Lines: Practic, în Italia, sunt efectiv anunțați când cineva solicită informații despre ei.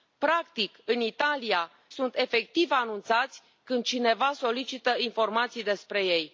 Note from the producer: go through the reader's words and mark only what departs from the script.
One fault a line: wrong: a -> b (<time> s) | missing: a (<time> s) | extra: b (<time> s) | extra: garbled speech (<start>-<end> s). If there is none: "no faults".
no faults